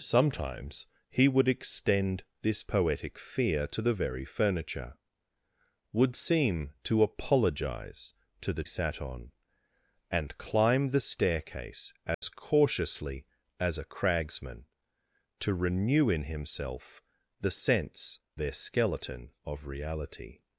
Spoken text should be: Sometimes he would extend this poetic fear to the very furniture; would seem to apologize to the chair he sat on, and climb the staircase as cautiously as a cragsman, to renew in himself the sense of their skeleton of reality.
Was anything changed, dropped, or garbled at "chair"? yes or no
yes